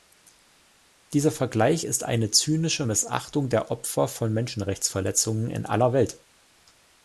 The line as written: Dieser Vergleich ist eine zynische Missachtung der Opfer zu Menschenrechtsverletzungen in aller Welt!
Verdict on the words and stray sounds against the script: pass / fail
fail